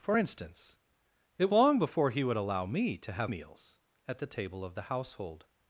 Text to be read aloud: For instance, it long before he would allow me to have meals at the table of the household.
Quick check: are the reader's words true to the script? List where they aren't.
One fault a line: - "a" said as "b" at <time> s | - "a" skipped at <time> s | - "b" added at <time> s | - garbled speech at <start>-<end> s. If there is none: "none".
none